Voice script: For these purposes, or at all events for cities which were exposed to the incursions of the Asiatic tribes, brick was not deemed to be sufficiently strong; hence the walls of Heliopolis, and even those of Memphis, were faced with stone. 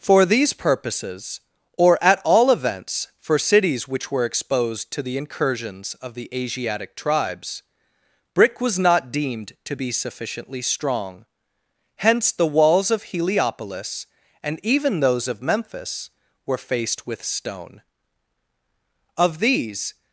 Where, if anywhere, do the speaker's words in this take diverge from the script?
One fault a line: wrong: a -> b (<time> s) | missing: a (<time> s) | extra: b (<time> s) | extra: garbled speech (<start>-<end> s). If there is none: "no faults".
extra: Of these (19.2 s)